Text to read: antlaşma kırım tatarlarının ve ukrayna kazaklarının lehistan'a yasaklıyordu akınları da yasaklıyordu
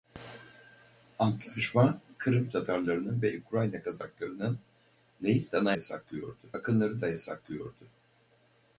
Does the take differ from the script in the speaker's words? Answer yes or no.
no